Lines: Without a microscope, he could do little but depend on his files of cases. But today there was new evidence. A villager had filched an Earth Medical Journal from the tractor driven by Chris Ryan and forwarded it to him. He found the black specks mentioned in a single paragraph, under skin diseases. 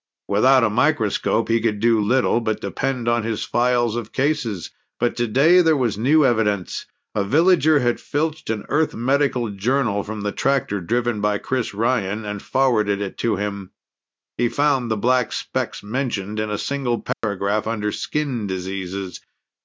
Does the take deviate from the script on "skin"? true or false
false